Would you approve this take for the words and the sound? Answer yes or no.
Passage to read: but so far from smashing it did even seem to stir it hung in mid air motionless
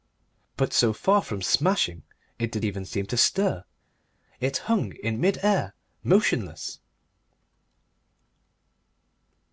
yes